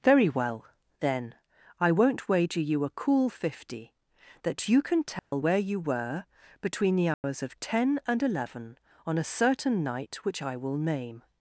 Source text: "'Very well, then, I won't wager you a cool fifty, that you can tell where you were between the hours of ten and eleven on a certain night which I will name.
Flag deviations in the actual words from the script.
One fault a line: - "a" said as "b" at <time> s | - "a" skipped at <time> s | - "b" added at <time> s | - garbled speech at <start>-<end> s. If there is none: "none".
none